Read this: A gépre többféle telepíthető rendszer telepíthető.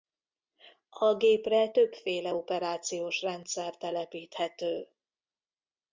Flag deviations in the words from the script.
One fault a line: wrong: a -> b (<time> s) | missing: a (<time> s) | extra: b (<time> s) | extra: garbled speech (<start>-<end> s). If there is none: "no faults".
wrong: telepíthető -> operációs (2.3 s)